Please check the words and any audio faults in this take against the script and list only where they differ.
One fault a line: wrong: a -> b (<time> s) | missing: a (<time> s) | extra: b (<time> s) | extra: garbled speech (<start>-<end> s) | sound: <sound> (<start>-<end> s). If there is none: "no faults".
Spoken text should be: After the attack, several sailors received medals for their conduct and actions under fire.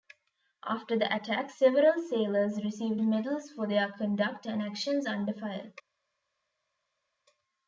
no faults